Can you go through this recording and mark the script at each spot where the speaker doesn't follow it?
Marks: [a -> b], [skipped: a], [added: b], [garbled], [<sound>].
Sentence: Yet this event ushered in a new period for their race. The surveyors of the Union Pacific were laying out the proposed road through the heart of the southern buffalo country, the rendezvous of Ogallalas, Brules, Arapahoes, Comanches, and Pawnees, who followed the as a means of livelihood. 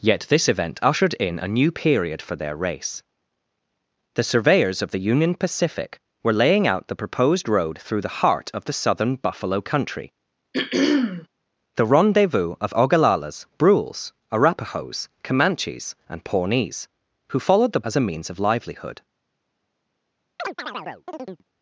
Yet this event ushered in a new period for their race. The surveyors of the Union Pacific were laying out the proposed road through the heart of the southern buffalo country, [throat clearing] the rendezvous of Ogallalas, Brules, Arapahoes, Comanches, and Pawnees, who followed the as a means of livelihood. [chirp]